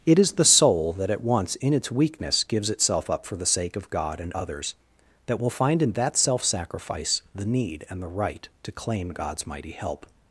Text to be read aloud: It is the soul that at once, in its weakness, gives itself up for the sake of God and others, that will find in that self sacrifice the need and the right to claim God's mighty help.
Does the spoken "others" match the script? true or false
true